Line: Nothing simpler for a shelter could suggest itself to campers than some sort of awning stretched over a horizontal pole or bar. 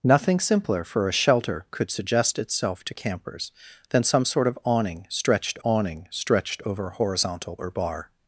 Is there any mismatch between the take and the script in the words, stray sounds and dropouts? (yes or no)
yes